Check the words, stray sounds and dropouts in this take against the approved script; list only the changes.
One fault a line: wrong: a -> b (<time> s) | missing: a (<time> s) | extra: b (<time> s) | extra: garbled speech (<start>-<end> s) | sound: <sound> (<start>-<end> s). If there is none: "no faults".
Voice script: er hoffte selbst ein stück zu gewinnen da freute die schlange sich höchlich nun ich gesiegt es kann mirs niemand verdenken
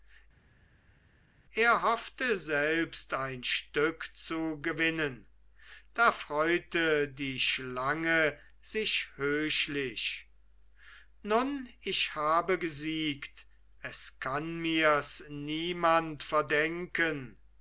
extra: habe (12.1 s)